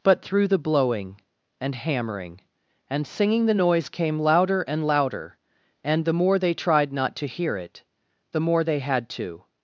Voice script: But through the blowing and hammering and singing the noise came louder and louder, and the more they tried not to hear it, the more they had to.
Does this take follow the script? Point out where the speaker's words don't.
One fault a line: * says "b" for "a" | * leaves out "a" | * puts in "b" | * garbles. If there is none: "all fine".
all fine